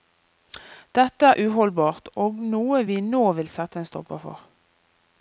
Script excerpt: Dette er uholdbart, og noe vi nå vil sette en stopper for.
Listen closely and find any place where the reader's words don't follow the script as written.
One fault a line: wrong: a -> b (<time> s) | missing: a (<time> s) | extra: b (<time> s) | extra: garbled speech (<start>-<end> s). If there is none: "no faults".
no faults